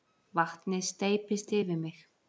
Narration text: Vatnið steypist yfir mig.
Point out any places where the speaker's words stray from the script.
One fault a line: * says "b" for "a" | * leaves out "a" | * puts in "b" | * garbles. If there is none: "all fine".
all fine